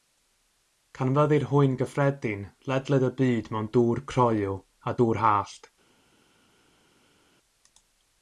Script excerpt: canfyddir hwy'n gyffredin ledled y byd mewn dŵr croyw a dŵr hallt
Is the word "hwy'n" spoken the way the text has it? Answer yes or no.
yes